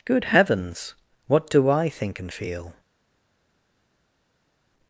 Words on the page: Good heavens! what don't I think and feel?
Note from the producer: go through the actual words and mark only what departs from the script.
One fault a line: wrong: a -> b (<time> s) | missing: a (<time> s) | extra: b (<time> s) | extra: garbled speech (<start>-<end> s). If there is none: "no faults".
wrong: don't -> do (1.5 s)